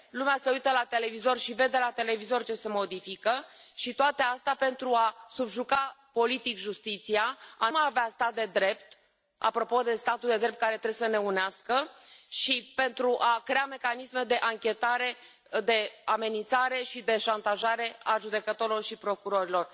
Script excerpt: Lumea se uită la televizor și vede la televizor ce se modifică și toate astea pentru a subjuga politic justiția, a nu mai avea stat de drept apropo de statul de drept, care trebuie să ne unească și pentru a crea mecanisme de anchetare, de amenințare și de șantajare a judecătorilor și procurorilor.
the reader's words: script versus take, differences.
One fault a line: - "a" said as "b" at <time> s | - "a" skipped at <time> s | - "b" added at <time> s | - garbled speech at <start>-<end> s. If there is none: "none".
- "nu" skipped at 7.7 s